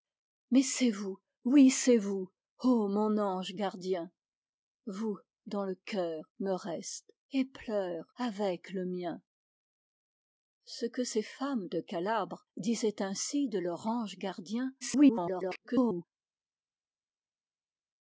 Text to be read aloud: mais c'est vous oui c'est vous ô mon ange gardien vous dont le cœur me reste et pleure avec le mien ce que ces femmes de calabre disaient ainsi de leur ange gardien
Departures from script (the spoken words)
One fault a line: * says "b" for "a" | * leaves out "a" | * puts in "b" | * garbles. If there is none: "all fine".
* garbles